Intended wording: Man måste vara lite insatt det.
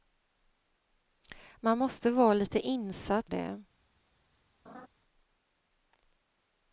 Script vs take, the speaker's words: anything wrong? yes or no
no